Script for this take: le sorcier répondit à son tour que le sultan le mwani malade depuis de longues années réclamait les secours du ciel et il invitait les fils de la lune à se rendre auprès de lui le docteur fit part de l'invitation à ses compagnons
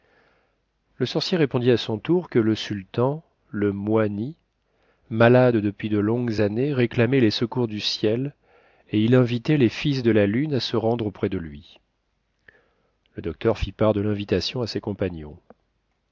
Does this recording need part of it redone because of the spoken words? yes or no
no